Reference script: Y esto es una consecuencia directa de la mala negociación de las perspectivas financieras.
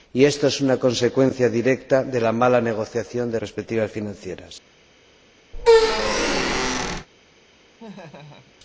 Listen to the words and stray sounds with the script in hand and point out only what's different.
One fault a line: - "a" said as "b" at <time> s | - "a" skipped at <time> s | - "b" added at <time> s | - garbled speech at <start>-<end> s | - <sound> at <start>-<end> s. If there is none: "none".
- "las" skipped at 3.4 s
- squeak at 5.5-7.1 s
- laugh at 7.8-8.5 s